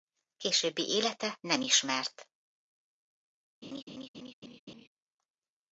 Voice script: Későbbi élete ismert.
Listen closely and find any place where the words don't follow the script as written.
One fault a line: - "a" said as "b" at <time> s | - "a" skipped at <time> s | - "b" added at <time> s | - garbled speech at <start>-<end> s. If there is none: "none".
- "nem" added at 1.4 s